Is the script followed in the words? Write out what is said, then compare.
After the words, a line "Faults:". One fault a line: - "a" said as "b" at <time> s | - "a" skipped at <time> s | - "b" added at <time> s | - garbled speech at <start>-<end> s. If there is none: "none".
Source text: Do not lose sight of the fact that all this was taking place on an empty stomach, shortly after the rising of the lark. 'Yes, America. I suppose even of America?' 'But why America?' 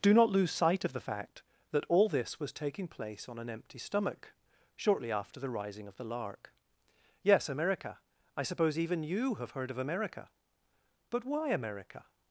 Do not lose sight of the fact that all this was taking place on an empty stomach, shortly after the rising of the lark. 'Yes, America. I suppose even you have heard of America?' 'But why America?'
Faults:
- "you have heard" added at 9.0 s